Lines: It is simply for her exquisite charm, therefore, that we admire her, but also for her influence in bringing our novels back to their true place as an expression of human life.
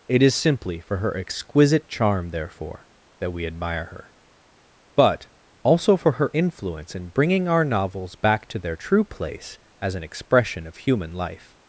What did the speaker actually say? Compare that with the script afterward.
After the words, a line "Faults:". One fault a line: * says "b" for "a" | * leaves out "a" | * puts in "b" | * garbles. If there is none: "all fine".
It is simply for her exquisite charm, therefore, that we admire her, but also for her influence in bringing our novels back to their true place as an expression of human life.
Faults:
all fine